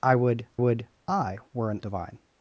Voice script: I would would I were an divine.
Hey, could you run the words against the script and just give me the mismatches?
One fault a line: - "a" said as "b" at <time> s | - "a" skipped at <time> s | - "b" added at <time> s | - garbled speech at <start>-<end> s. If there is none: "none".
none